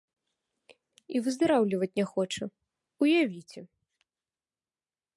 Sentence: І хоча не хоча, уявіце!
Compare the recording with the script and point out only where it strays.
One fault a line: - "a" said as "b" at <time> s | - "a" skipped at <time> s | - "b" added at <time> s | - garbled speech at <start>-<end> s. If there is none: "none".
- "хоча" said as "выздараўліваць" at 1.3 s